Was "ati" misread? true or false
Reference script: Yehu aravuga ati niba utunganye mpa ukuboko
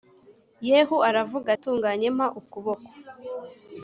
true